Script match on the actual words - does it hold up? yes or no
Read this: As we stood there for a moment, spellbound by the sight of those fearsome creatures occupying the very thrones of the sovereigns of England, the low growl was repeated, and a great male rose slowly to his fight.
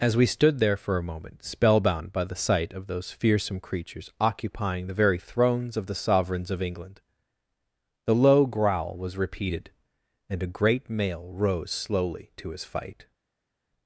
yes